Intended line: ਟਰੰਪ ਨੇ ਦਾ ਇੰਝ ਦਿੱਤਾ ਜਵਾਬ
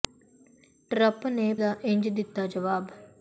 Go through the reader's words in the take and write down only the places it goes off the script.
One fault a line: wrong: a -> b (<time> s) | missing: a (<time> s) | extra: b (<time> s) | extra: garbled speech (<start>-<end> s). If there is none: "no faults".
no faults